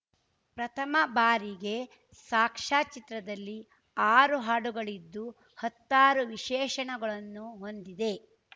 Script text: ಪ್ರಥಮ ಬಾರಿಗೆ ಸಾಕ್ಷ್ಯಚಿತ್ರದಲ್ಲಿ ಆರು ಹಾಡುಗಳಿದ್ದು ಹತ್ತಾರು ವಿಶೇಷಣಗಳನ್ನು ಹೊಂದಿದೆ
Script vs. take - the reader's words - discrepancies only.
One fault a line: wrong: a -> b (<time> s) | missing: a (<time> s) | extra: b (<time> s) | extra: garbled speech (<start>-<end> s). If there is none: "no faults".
no faults